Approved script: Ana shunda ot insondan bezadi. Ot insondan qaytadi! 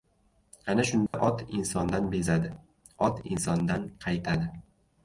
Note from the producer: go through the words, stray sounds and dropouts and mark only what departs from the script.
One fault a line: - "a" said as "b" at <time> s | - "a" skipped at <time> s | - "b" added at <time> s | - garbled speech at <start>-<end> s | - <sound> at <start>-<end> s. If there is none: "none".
- dropout at 1.1-1.1 s